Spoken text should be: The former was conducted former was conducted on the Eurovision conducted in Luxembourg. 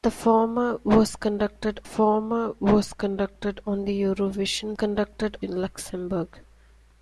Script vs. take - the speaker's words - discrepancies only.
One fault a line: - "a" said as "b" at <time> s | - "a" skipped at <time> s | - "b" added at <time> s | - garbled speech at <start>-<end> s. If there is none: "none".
none